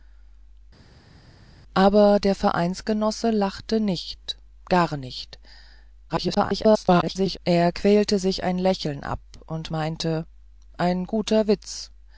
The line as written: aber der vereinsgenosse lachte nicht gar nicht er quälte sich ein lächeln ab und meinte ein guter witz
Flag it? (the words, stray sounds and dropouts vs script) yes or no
yes